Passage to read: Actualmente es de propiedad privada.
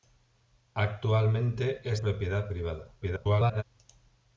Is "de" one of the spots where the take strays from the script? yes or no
yes